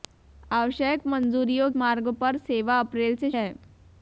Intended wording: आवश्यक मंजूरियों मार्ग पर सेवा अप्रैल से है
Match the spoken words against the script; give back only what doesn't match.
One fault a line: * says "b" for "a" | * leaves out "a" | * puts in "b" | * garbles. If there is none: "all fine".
all fine